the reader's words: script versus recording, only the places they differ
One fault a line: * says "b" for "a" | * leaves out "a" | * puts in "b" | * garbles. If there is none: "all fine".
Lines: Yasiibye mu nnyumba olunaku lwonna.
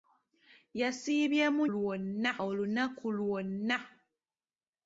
* says "lwonna" for "nnyumba"